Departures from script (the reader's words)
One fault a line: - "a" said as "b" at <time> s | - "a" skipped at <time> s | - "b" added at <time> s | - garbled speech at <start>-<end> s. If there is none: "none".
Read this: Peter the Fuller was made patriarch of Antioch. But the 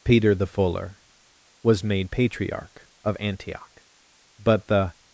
none